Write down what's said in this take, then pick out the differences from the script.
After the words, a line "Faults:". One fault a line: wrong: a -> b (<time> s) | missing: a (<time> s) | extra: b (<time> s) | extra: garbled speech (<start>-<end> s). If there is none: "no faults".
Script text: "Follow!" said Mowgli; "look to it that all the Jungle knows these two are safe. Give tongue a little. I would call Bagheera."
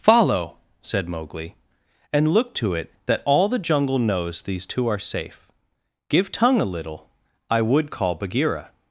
"Follow!" said Mowgli; "and look to it that all the Jungle knows these two are safe. Give tongue a little. I would call Bagheera."
Faults:
extra: and (2.1 s)